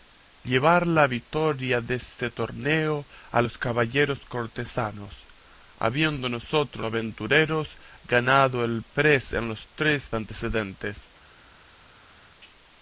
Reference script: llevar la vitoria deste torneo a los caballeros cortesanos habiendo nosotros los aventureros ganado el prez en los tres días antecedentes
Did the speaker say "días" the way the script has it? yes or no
no